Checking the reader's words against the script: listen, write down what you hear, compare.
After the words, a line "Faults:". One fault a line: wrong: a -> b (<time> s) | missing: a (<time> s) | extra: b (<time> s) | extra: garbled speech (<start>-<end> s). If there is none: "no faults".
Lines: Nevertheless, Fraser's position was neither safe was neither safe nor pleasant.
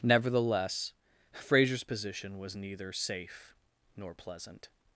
Nevertheless, Fraser's position was neither safe nor pleasant.
Faults:
missing: was neither safe (3.5 s)